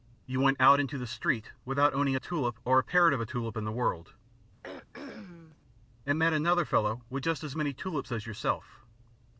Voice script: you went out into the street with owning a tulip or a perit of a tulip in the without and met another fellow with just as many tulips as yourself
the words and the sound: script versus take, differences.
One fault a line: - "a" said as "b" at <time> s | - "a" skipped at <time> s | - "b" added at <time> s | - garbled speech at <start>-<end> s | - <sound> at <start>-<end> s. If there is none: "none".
- "with" said as "without" at 1.6 s
- "without" said as "world" at 3.7 s
- throat clearing at 4.6-5.6 s